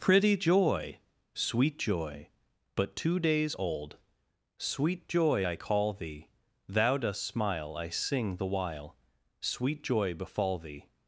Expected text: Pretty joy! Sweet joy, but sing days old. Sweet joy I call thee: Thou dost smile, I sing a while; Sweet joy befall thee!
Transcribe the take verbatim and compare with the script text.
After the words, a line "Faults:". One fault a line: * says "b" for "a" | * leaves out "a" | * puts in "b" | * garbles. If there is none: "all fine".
Pretty joy! Sweet joy, but two days old. Sweet joy I call thee: Thou dost smile, I sing the while; Sweet joy befall thee!
Faults:
* says "two" for "sing"
* says "the" for "a"